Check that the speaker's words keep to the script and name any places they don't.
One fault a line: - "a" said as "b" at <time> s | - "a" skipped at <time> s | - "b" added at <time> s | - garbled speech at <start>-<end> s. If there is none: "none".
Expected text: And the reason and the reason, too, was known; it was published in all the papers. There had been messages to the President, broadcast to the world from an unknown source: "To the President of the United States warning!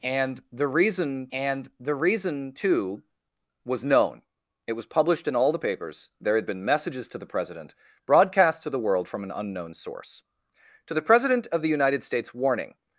none